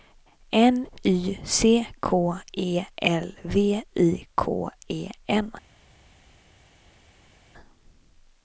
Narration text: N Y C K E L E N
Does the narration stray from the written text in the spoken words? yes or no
yes